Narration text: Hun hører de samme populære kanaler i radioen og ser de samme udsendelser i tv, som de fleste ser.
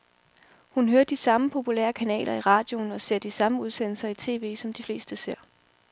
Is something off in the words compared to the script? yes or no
no